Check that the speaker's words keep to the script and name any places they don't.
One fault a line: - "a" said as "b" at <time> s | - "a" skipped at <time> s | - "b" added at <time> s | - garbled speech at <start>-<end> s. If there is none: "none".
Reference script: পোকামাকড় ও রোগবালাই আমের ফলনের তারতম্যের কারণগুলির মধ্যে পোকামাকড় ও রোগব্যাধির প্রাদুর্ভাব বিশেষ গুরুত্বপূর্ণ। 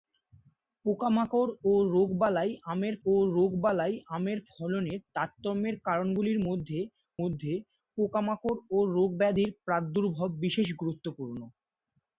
- "ও রোগবালাই আমের" added at 3.0 s
- "মধ্যে" added at 7.2 s